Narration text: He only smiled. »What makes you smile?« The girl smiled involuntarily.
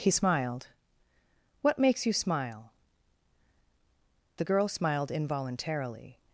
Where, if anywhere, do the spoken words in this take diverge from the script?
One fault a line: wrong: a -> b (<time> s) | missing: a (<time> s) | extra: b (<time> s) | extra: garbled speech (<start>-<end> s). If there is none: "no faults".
missing: only (0.1 s)